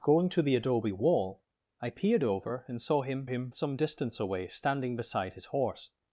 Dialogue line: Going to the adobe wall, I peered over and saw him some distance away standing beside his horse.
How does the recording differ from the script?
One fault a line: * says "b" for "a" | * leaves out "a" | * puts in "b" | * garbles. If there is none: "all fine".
* puts in "him"